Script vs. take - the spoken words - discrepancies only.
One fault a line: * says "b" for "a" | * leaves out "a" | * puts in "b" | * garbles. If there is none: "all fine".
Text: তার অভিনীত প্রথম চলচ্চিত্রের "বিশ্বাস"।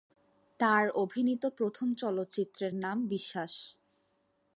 * puts in "নাম"